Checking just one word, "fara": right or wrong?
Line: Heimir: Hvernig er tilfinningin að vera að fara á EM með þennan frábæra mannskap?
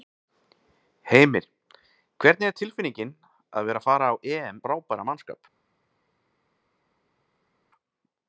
right